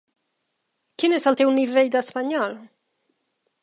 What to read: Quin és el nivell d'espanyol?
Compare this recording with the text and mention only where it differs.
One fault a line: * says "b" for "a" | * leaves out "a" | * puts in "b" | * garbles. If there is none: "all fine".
* puts in "teu"